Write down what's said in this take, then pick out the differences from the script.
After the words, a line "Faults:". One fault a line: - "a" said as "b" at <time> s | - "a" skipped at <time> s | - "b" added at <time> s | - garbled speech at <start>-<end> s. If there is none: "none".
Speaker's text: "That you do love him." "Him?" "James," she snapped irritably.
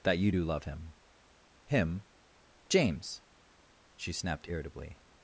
"That you do love him." "Him?" "James," she snapped irritably.
Faults:
none